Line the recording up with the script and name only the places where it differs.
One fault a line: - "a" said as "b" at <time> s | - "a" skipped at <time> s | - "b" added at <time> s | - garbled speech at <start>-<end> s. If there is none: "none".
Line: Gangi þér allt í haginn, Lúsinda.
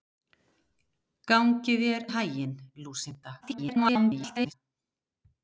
- "allt" skipped at 2.1 s
- garbled speech at 3.4-4.5 s